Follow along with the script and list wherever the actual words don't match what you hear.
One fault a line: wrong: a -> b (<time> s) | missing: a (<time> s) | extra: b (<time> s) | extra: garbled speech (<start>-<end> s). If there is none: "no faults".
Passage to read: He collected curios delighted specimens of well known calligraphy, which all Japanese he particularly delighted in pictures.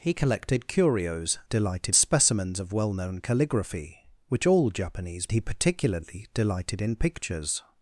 no faults